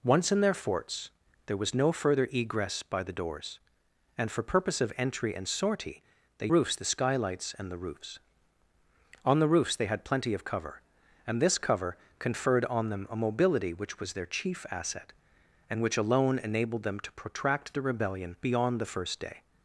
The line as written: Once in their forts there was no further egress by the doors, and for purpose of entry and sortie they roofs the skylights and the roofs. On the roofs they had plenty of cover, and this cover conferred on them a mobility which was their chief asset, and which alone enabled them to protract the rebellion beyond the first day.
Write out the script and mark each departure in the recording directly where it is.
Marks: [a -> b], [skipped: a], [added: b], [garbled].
Once in their forts there was no further egress by the doors, and for purpose of entry and sortie they roofs the skylights and the roofs. On the roofs they had plenty of cover, and this cover conferred on them a mobility which was their chief asset, and which alone enabled them to protract the rebellion beyond the first day.